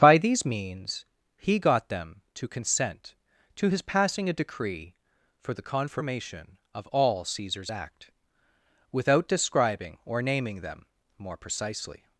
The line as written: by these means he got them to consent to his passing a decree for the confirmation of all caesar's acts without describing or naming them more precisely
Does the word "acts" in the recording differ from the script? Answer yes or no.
yes